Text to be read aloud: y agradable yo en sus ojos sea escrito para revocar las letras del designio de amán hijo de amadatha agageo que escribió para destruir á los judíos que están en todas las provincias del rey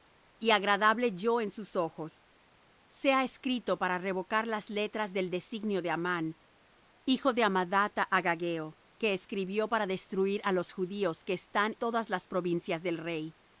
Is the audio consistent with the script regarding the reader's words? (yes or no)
no